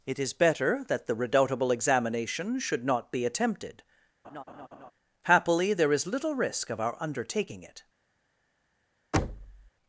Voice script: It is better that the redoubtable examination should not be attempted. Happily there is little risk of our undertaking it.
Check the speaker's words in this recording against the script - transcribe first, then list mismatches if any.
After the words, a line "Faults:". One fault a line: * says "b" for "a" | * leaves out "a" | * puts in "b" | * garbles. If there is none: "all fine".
It is better that the redoubtable examination should not be attempted. Happily there is little risk of our undertaking it.
Faults:
all fine